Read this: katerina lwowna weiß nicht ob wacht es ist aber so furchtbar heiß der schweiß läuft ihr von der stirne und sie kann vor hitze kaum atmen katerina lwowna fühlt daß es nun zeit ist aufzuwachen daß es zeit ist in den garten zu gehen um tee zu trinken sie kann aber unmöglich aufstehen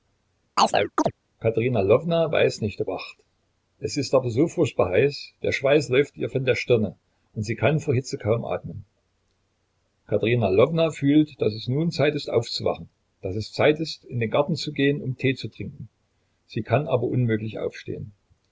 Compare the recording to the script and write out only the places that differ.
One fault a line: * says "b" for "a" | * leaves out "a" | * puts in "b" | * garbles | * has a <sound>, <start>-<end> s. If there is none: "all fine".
* has a chirp, 0.6-1.1 s